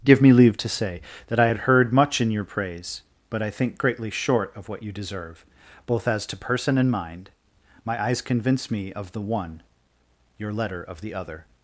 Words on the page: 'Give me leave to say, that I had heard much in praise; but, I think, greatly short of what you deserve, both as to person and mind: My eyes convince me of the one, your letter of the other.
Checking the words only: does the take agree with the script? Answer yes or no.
no